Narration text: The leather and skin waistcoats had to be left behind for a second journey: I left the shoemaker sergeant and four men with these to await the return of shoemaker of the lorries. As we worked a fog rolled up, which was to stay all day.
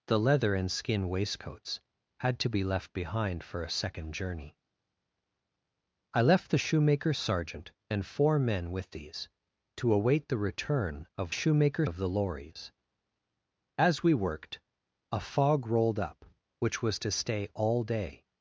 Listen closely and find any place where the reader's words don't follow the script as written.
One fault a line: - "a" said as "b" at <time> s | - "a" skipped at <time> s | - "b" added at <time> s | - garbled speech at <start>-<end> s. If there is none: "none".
none